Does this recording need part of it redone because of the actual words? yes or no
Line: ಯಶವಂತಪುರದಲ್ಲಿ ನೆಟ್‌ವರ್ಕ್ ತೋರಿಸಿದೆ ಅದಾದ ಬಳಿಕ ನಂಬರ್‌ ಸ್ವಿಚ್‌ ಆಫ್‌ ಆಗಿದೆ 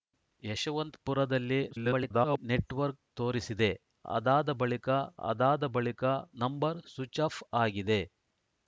yes